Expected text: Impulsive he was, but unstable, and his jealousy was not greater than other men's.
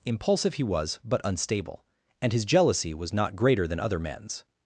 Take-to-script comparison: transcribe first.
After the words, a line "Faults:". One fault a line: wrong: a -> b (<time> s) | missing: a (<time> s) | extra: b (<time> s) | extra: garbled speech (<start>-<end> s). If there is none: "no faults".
Impulsive he was, but unstable, and his jealousy was not greater than other men's.
Faults:
no faults